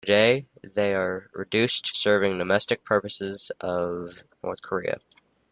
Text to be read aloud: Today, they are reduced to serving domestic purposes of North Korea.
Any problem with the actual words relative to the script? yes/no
no